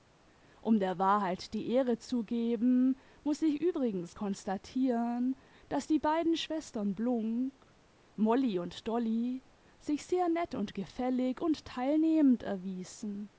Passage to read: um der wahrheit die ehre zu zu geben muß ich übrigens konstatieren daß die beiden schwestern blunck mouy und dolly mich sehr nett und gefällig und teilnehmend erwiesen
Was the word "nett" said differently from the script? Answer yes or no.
no